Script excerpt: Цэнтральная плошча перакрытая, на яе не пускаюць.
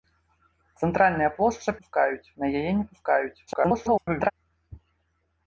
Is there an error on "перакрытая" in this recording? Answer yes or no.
yes